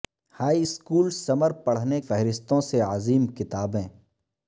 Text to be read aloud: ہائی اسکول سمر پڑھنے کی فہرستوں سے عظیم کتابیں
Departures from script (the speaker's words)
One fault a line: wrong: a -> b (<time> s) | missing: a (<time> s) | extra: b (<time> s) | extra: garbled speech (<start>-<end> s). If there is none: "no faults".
missing: کی (2.0 s)